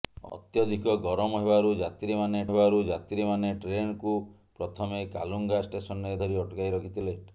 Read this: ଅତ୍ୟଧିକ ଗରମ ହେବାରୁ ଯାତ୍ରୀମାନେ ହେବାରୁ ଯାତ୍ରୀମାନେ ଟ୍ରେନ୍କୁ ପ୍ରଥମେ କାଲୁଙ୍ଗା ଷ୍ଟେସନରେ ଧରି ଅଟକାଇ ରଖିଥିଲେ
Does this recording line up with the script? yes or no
yes